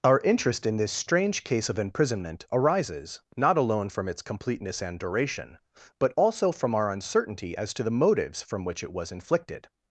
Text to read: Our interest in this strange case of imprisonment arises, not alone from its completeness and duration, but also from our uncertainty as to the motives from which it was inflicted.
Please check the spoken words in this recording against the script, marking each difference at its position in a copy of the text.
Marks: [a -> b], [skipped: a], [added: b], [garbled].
Our interest in this strange case of imprisonment arises, not alone from its completeness and duration, but also from our uncertainty as to the motives from which it was inflicted.